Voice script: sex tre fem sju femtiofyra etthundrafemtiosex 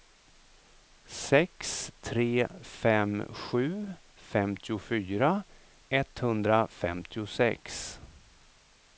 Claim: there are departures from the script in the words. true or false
false